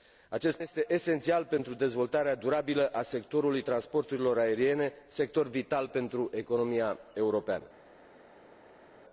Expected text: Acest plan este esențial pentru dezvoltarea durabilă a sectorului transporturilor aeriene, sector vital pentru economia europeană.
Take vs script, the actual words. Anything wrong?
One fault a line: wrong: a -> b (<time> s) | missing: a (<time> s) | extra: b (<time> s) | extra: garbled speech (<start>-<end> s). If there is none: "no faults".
missing: plan (0.6 s)